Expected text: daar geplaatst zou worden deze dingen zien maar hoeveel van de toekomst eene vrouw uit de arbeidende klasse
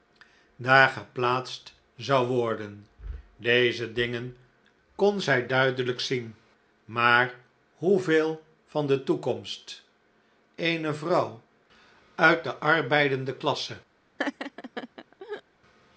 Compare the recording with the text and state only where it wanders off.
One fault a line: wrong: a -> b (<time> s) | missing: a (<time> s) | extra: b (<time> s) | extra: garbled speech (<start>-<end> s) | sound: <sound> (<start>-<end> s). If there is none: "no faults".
extra: kon zij duidelijk (5.0 s)
sound: laugh (14.2-15.4 s)